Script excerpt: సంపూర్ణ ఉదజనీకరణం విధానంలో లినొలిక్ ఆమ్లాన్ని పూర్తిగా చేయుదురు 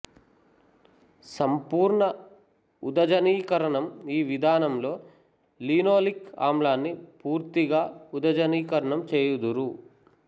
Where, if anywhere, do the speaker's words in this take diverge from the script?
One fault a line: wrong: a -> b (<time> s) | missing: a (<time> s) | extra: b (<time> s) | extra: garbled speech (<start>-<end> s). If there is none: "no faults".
extra: ఈ (4.1 s)
extra: ఉదజనీకరణం (8.1 s)